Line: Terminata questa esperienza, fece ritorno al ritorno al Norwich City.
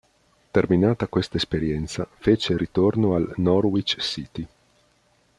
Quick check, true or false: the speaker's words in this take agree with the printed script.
false